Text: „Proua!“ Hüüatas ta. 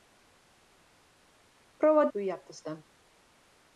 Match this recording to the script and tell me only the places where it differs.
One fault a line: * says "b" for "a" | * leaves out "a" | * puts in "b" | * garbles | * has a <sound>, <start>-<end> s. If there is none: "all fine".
all fine